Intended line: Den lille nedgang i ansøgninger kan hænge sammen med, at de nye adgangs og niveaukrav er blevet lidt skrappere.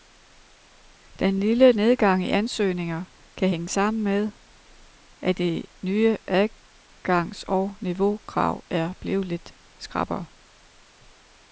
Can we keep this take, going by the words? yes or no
yes